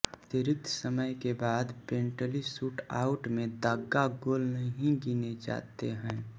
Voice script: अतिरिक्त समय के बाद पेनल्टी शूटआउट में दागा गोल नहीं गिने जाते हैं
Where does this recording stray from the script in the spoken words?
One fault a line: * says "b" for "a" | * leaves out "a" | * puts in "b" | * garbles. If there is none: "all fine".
all fine